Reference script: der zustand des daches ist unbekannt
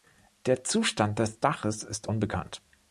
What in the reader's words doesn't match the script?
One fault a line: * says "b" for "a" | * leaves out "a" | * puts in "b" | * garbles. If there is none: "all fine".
all fine